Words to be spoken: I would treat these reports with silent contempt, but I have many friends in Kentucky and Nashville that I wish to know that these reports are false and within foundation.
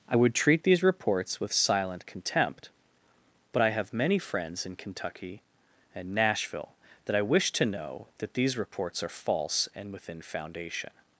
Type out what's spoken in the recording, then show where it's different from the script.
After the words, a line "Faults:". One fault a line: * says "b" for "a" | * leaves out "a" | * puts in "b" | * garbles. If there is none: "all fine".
I would treat these reports with silent contempt, but I have many friends in Kentucky and Nashville that I wish to know that these reports are false and within foundation.
Faults:
all fine